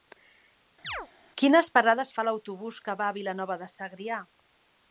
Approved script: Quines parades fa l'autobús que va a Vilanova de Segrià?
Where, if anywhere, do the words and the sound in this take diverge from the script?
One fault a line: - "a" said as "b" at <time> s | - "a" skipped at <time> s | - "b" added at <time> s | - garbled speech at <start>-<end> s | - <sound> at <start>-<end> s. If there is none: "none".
- chirp at 0.8-1.1 s